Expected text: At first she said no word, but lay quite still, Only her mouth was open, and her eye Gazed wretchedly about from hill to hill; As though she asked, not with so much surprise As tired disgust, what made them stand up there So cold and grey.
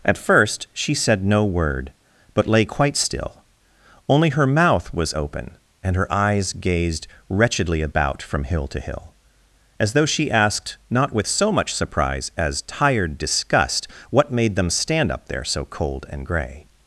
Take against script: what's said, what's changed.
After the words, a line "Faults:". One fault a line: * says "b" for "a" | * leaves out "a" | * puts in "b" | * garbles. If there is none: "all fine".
At first she said no word, but lay quite still, Only her mouth was open, and her eyes Gazed wretchedly about from hill to hill; As though she asked, not with so much surprise As tired disgust, what made them stand up there So cold and grey.
Faults:
* says "eyes" for "eye"